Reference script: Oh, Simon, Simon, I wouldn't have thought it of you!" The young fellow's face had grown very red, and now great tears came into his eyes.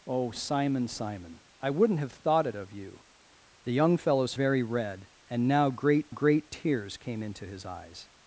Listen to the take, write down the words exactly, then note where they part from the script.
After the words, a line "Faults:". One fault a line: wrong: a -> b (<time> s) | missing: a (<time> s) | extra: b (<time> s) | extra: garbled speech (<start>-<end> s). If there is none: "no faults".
Oh, Simon, Simon, I wouldn't have thought it of you!" The young fellow's very red, and now great great tears came into his eyes.
Faults:
missing: face had grown (4.3 s)
extra: great (6.1 s)